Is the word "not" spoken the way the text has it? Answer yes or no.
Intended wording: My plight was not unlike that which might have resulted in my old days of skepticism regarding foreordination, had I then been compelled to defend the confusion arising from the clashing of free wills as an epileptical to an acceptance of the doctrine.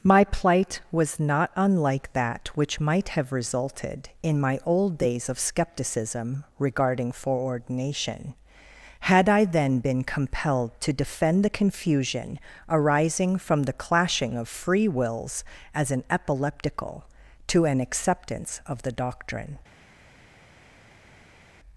yes